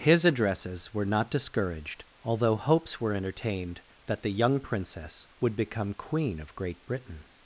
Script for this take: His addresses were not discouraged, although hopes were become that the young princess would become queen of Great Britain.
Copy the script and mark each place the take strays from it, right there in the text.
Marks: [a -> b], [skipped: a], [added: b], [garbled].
His addresses were not discouraged, although hopes were [become -> entertained] that the young princess would become queen of Great Britain.